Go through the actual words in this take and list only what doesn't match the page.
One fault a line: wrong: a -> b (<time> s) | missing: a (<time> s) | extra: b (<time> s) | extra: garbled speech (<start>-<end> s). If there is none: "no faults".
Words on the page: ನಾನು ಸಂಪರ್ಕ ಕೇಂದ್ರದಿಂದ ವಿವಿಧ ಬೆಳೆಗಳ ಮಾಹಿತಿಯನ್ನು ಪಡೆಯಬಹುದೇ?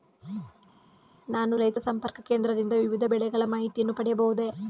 extra: ರೈತ (1.6 s)